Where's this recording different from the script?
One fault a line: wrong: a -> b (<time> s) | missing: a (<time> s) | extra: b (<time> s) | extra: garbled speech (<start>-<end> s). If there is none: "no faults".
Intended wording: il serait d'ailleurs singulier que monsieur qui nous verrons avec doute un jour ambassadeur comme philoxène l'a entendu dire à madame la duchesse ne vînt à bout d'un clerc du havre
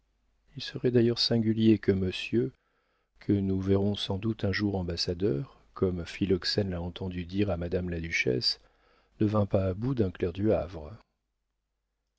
wrong: qui -> que (3.2 s)
wrong: avec -> sans (4.0 s)
extra: pas (9.5 s)